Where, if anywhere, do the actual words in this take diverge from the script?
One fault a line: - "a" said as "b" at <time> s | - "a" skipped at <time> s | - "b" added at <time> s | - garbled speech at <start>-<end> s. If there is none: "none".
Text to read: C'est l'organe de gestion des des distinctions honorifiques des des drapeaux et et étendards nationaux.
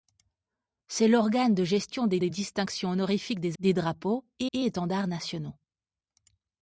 none